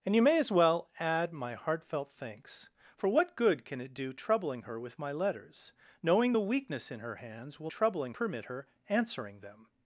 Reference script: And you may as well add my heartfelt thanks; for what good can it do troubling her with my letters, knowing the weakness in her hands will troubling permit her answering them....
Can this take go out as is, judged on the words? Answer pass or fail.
pass